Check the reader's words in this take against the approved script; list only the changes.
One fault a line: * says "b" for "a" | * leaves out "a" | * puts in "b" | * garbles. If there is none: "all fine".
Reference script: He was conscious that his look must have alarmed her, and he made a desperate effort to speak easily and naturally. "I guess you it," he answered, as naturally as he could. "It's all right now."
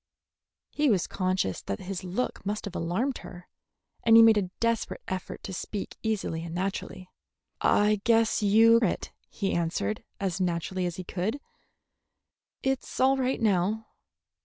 all fine